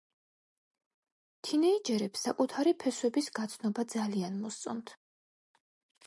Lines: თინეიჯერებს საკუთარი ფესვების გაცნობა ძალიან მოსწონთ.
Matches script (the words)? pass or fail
pass